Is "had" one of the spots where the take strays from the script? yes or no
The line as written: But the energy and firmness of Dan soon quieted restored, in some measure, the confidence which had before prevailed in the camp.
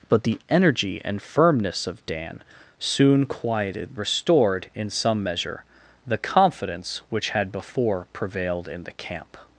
no